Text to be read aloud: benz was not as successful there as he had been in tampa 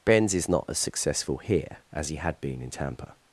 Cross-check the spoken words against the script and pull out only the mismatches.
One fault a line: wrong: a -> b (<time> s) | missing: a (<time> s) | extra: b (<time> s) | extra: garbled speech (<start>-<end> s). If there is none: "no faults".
wrong: was -> is (0.3 s)
wrong: there -> here (1.4 s)